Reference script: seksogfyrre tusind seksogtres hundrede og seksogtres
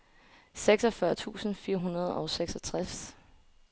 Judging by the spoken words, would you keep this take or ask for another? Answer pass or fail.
fail